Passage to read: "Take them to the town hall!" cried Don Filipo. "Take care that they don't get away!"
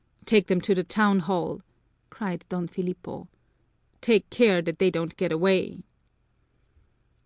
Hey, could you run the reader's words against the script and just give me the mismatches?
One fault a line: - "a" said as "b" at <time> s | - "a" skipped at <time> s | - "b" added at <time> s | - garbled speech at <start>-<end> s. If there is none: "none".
none